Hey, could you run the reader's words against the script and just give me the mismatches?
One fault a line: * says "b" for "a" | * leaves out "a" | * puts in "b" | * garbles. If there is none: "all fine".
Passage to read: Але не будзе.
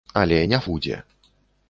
all fine